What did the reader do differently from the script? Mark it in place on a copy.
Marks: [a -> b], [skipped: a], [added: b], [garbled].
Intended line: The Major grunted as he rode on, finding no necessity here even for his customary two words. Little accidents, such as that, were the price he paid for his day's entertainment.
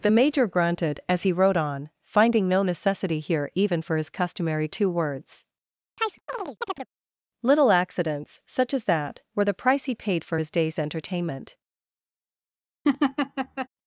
The Major grunted as he rode on, finding no necessity here even for his customary two words. Little accidents, such as that, were the price he paid for his day's entertainment.